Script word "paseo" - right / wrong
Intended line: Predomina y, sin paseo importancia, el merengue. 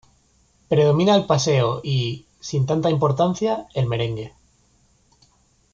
wrong